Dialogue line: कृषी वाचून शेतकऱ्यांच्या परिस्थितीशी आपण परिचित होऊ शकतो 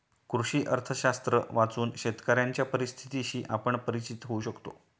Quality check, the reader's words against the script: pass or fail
fail